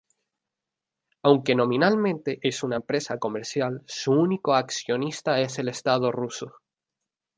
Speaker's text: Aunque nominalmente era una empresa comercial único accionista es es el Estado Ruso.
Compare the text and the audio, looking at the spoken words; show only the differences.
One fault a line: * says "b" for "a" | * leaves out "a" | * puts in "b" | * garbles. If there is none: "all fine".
* says "es" for "era"
* puts in "su"
* leaves out "es"